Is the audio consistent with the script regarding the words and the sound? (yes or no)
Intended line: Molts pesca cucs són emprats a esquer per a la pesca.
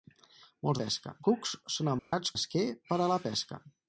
no